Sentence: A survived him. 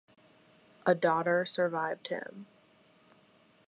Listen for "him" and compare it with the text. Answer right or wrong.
right